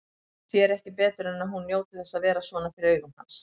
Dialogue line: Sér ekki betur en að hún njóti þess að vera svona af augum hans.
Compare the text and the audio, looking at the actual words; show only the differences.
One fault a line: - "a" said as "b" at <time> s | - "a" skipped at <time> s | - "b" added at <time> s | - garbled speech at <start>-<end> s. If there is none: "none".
- "af" said as "fyrir" at 2.8 s